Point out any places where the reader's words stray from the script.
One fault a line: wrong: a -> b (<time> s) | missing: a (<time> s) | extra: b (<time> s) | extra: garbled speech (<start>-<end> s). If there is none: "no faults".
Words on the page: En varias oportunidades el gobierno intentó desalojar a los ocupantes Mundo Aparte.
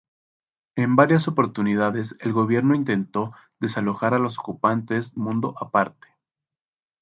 no faults